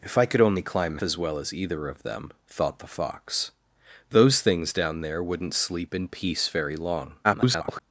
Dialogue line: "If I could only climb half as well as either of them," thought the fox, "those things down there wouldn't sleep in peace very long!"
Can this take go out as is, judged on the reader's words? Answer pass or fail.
fail